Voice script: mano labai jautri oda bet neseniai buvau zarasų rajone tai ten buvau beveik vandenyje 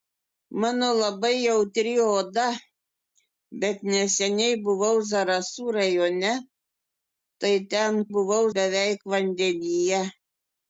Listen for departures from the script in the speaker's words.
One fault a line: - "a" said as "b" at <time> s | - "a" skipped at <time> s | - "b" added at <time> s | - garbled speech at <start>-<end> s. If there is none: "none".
none